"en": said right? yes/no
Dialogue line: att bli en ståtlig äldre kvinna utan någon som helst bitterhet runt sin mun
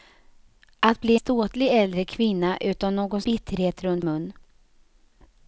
no